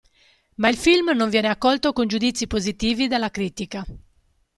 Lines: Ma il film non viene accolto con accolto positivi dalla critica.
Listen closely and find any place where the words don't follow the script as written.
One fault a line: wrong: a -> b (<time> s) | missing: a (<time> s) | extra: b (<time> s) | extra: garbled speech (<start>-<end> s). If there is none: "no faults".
wrong: accolto -> giudizi (2.1 s)